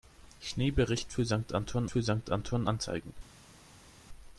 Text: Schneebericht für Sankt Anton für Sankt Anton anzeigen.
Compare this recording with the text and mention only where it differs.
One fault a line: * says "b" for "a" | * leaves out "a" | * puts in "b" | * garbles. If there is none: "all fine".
all fine